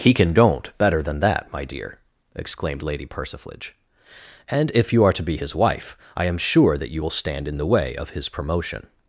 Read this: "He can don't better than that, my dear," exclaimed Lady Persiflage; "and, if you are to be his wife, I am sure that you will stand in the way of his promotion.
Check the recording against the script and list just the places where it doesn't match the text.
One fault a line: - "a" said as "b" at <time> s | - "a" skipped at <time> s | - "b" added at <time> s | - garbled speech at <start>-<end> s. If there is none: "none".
none